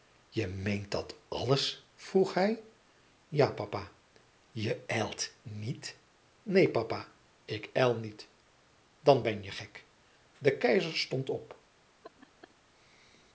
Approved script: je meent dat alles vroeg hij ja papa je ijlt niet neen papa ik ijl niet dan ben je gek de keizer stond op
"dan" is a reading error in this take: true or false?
false